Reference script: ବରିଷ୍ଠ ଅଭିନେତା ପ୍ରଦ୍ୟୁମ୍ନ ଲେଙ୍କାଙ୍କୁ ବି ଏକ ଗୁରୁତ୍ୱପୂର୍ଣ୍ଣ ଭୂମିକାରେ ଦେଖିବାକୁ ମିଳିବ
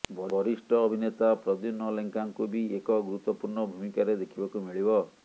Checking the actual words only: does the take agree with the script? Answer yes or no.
yes